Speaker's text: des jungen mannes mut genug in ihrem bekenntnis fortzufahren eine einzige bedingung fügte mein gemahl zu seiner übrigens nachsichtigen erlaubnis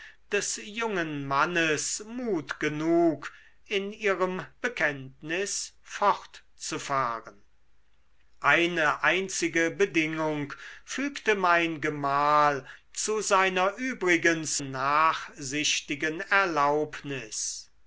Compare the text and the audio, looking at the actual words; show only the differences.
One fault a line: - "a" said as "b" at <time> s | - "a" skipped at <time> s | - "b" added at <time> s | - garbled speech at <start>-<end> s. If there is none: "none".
none